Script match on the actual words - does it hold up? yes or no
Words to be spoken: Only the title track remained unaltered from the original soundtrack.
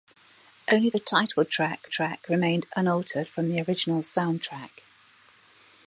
no